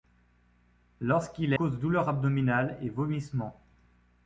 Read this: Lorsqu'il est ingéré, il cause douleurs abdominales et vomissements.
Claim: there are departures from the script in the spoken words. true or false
true